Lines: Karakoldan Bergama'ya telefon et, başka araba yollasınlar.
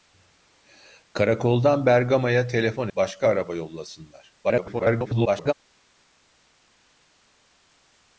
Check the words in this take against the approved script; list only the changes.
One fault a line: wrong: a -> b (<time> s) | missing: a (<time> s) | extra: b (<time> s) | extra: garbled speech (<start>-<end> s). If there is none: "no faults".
missing: et (2.9 s)
extra: garbled speech (4.4-5.5 s)